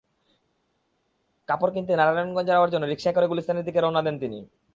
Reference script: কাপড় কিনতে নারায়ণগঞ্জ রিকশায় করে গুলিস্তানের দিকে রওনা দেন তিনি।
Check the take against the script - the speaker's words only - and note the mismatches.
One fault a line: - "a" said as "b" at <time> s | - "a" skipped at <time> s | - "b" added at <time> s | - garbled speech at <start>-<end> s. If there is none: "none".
- "যাওয়ার জন্য" added at 2.5 s